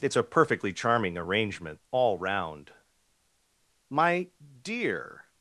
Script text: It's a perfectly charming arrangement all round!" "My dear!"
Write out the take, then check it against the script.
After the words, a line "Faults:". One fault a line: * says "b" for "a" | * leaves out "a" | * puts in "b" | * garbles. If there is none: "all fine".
It's a perfectly charming arrangement all round!" "My dear!"
Faults:
all fine